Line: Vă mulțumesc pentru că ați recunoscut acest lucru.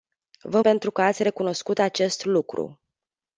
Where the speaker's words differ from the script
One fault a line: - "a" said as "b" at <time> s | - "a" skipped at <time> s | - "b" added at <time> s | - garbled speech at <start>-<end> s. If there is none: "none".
- "mulțumesc" skipped at 0.6 s